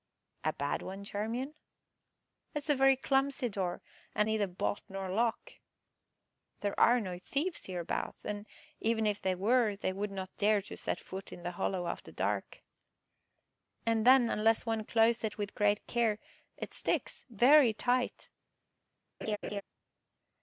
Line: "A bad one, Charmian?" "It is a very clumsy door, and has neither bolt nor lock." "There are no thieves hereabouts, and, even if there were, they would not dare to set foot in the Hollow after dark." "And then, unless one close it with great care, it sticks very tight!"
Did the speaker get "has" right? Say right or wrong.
wrong